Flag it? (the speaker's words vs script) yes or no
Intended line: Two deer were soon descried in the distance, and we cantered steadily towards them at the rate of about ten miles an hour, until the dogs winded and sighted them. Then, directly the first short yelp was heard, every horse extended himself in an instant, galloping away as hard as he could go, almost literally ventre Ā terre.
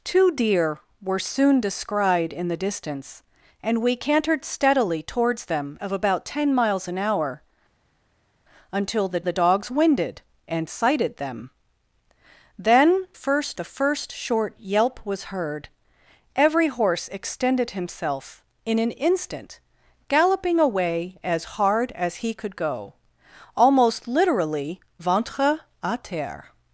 yes